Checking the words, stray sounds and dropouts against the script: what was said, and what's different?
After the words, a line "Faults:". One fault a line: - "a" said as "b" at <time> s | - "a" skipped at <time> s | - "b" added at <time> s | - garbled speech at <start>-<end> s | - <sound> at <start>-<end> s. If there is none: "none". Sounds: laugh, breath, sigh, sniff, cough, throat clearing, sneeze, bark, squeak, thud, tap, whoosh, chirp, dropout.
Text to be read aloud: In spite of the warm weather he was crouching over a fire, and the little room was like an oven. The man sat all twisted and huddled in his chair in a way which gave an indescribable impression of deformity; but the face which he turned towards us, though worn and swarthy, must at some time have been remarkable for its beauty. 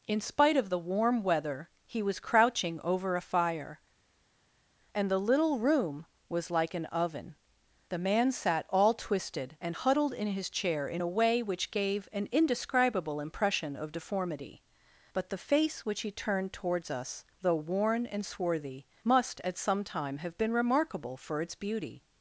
In spite of the warm weather he was crouching over a fire, and the little room was like an oven. The man sat all twisted and huddled in his chair in a way which gave an indescribable impression of deformity; but the face which he turned towards us, though worn and swarthy, must at some time have been remarkable for its beauty.
Faults:
none